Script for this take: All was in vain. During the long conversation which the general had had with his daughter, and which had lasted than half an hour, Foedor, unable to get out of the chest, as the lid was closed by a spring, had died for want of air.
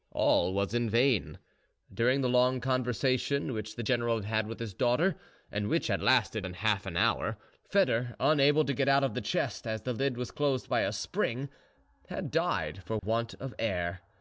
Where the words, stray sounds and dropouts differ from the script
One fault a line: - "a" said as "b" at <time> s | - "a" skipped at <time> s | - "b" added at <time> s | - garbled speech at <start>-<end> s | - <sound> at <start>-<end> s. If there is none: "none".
- dropout at 13.0-13.0 s